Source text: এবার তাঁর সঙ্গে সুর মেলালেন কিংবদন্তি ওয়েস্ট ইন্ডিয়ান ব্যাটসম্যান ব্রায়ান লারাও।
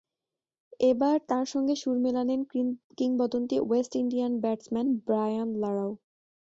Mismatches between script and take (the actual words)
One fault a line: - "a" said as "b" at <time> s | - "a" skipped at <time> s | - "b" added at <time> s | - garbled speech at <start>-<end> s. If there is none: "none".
none